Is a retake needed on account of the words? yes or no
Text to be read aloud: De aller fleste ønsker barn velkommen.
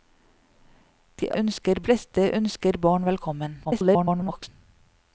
yes